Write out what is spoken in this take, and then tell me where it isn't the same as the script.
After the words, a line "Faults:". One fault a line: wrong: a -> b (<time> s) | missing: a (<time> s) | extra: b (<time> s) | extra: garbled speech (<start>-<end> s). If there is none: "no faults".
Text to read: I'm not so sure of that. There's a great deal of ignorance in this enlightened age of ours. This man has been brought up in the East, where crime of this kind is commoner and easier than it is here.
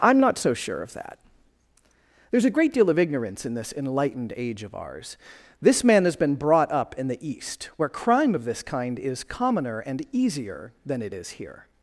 I'm not so sure of that. There's a great deal of ignorance in this enlightened age of ours. This man has been brought up in the East, where crime of this kind is commoner and easier than it is here.
Faults:
no faults